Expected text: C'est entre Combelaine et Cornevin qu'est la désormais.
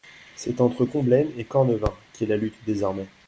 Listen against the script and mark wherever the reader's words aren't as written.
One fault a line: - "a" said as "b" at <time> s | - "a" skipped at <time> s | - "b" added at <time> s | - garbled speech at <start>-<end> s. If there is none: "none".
- "lutte" added at 2.4 s